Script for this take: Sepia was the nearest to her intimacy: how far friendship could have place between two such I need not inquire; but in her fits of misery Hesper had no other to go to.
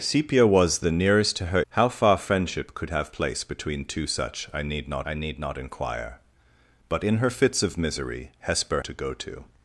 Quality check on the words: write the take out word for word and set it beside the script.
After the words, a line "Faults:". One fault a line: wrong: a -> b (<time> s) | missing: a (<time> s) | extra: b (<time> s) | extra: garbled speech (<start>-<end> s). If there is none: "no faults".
Sepia was the nearest to her: how far friendship could have place between two such I need not I need not inquire; but in her fits of misery Hesper to go to.
Faults:
missing: intimacy (1.6 s)
extra: I need not (5.0 s)
missing: had no other (8.8 s)